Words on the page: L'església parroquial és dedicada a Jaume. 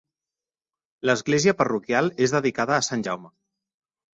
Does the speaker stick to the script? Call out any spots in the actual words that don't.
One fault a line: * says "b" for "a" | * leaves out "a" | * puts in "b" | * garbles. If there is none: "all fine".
* puts in "Sant"